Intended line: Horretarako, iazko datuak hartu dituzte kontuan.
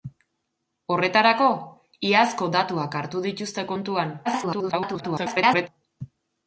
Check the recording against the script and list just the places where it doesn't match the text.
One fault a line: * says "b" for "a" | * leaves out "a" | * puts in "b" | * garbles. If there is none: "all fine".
* garbles